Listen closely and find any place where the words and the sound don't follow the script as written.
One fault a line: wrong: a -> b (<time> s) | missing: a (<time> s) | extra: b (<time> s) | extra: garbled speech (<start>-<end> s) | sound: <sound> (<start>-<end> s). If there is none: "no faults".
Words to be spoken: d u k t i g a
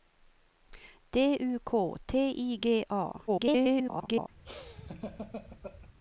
extra: garbled speech (3.3-4.3 s)
sound: laugh (4.4-5.9 s)